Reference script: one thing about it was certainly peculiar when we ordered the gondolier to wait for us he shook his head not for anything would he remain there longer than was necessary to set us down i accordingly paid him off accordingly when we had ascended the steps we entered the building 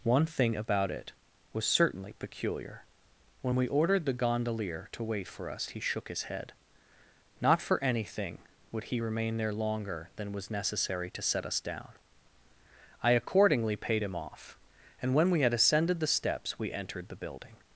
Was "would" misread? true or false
false